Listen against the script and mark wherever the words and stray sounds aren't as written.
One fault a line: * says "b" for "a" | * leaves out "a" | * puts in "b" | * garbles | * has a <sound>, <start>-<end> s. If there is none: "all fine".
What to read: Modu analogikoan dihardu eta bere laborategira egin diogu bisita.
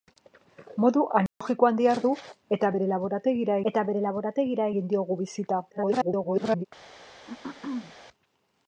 * has a dropout, 1.3-1.4 s
* puts in "eta bere laborategira"
* garbles
* has a throat clearing, 7.3-7.9 s